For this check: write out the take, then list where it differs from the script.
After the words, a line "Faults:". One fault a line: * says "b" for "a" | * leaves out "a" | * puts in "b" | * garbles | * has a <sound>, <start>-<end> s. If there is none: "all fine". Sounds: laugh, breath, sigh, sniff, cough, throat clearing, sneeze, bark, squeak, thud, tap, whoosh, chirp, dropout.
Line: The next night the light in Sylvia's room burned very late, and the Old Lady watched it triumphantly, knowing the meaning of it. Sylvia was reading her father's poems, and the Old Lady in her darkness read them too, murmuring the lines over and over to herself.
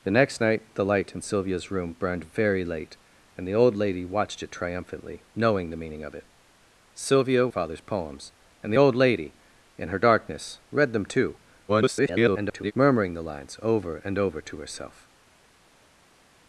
The next night the light in Sylvia's room burned very late, and the Old Lady watched it triumphantly, knowing the meaning of it. Sylvia father's poems, and the Old Lady in her darkness read them too, [garbled] murmuring the lines over and over to herself.
Faults:
* leaves out "was reading her"
* garbles